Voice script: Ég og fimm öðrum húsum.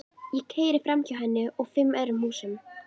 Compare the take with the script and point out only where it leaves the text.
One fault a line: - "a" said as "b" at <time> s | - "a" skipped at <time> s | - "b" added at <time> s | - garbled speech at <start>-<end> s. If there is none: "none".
- "keyri framhjá henni" added at 0.5 s